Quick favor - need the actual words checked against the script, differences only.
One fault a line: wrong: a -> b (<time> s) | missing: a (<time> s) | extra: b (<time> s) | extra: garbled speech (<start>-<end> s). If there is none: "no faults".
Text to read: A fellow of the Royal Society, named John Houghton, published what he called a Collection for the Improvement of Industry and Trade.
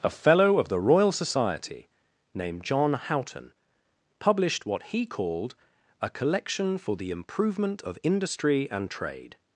no faults